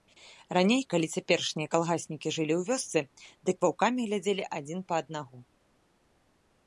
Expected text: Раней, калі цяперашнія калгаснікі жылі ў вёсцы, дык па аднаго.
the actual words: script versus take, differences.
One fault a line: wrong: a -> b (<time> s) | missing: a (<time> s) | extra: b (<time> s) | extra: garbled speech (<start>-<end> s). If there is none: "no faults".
extra: ваўкамі глядзелі адзін (3.7 s)